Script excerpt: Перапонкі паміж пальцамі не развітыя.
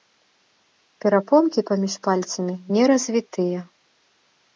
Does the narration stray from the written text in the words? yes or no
no